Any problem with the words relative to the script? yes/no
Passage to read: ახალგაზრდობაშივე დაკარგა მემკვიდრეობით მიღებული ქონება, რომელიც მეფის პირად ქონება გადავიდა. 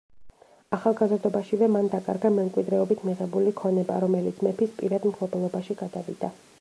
yes